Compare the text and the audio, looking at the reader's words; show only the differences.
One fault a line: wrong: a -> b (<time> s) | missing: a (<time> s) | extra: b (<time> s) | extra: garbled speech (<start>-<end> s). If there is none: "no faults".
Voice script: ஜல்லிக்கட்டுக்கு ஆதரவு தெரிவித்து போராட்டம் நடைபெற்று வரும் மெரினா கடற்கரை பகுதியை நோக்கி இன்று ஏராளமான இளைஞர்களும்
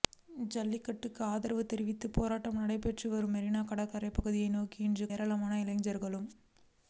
no faults